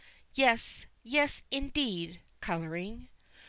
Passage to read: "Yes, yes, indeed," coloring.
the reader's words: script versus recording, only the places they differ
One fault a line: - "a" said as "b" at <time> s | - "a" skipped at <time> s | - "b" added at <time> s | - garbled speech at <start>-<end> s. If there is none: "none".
none